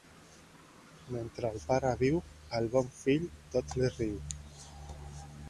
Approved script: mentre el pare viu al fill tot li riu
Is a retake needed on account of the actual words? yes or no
yes